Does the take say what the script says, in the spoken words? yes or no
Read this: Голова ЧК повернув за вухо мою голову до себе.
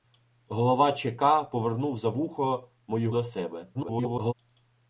no